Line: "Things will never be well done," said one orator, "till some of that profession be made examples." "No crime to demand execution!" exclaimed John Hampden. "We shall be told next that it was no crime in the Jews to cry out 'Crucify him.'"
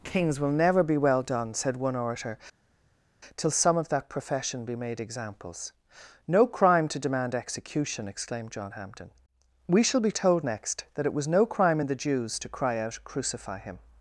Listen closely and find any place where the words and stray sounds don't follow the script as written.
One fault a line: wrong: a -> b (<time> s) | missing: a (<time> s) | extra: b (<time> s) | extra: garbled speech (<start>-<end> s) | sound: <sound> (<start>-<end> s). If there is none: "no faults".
wrong: Things -> Kings (0.0 s)